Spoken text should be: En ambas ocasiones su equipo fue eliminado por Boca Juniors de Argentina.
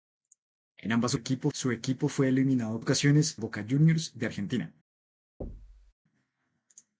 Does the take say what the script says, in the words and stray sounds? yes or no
no